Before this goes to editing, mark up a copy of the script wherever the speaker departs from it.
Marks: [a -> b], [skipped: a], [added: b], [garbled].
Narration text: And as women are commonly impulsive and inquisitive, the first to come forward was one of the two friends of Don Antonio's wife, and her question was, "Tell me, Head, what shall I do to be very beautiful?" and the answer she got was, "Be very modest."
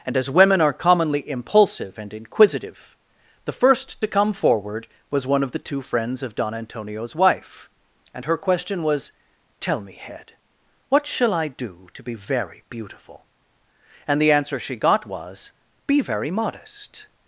And as women are commonly impulsive and inquisitive, the first to come forward was one of the two friends of Don Antonio's wife, and her question was, "Tell me, Head, what shall I do to be very beautiful?" and the answer she got was, "Be very modest."